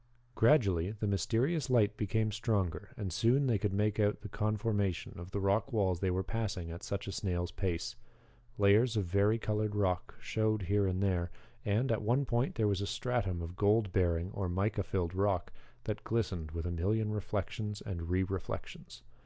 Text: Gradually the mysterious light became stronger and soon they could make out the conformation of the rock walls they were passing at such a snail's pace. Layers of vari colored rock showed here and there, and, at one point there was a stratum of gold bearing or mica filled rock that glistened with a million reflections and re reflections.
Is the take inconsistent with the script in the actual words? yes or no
no